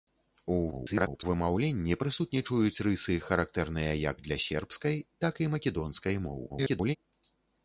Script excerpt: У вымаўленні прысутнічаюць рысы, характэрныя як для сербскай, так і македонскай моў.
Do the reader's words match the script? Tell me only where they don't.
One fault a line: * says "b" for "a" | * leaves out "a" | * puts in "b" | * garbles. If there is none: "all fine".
* garbles
* garbles